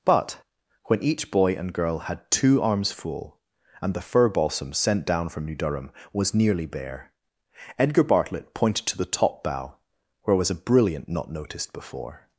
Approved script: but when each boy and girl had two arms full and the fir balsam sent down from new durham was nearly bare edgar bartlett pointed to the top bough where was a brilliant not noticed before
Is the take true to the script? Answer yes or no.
yes